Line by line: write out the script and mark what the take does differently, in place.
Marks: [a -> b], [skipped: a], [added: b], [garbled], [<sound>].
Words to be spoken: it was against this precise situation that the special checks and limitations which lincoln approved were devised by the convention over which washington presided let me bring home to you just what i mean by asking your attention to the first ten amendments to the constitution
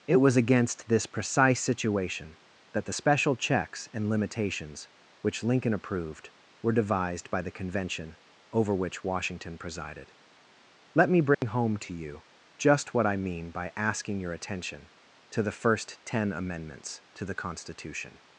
it was against this precise situation that the special checks and limitations which lincoln approved were devised by the convention over which washington presided let me bring [dropout] home to you just what i mean by asking your attention to the first ten amendments to the constitution